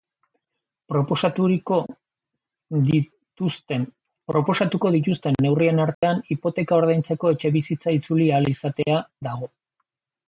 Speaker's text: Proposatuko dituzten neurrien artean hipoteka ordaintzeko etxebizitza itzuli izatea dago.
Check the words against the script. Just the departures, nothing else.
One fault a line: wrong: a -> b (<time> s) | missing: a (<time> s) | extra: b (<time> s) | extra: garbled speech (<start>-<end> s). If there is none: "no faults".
extra: ahal (8.4 s)